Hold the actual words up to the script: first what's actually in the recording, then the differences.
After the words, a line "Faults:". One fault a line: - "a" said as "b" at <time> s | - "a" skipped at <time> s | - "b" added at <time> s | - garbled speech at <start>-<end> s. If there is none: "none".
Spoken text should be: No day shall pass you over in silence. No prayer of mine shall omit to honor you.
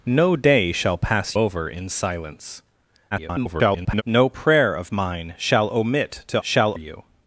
No day shall pass over in silence. [garbled] No prayer of mine shall omit to shall you.
Faults:
- "you" skipped at 1.4 s
- garbled speech at 3.1-4.0 s
- "honor" said as "shall" at 6.4 s